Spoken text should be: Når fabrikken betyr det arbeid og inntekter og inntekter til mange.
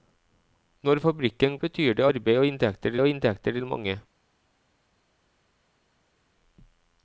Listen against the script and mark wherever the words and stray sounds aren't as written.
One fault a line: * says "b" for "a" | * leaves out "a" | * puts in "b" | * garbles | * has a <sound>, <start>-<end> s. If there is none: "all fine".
all fine